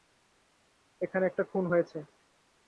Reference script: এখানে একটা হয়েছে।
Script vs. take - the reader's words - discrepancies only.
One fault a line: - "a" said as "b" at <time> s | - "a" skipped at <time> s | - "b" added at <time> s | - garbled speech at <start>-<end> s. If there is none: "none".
- "খুন" added at 1.5 s